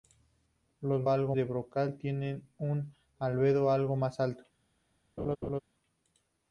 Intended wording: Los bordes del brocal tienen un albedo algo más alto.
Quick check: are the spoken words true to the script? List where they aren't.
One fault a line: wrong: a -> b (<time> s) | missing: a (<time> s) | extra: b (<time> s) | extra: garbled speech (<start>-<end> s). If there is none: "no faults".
wrong: bordes -> algo (1.1 s)